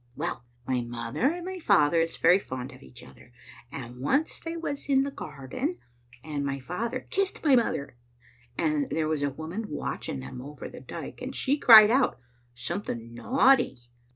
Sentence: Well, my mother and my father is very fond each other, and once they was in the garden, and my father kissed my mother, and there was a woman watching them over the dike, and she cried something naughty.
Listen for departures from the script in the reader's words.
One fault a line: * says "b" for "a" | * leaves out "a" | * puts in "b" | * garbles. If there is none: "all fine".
* puts in "of"
* puts in "out"